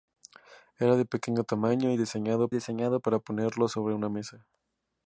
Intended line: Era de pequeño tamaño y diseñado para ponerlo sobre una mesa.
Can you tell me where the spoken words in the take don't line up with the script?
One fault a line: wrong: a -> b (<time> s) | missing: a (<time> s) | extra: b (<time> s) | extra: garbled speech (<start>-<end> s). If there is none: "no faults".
extra: diseñado (2.5 s)